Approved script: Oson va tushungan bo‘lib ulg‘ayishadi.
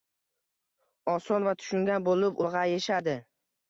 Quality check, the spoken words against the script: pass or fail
pass